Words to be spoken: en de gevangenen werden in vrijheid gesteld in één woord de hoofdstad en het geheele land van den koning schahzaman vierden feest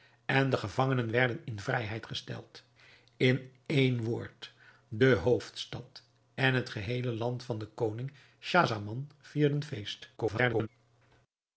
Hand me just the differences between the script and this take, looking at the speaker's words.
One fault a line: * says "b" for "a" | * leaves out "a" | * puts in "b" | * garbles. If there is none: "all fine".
* garbles